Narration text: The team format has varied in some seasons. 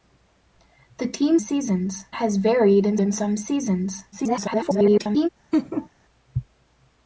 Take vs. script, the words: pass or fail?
fail